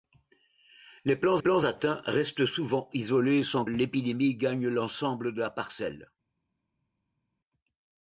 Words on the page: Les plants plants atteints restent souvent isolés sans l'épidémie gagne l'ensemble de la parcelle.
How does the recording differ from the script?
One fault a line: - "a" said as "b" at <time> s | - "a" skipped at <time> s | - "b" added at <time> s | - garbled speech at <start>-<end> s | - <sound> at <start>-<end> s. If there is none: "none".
none